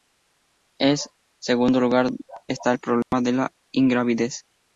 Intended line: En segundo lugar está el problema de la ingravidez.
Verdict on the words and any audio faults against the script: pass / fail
fail